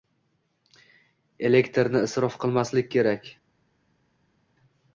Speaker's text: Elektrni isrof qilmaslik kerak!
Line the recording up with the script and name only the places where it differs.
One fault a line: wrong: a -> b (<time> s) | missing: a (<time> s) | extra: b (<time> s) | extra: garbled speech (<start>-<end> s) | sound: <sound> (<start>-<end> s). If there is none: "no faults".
no faults